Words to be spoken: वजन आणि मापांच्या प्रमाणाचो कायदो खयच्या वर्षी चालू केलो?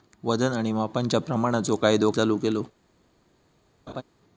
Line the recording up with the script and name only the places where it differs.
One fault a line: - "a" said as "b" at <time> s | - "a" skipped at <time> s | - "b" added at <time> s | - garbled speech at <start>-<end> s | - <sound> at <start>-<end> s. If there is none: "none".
- "खयच्या वर्षी" skipped at 2.1 s
- laugh at 3.9-4.0 s